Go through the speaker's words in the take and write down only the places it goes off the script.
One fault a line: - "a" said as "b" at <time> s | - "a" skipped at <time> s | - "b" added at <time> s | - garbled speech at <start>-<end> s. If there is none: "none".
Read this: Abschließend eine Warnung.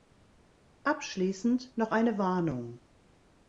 - "noch" added at 1.8 s